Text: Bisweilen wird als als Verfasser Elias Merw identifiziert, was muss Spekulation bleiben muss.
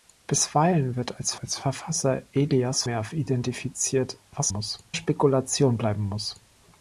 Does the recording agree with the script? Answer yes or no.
yes